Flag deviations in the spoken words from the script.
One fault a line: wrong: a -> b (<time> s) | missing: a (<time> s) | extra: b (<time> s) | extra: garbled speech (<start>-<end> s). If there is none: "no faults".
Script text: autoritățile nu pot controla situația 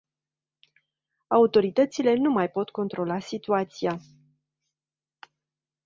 extra: mai (2.3 s)